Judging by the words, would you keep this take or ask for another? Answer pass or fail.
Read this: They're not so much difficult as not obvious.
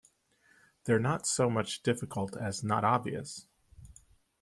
pass